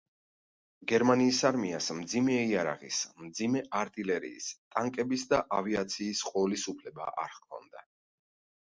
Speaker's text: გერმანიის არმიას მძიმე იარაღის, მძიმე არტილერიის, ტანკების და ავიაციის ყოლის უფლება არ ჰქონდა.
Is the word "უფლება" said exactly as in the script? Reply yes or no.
yes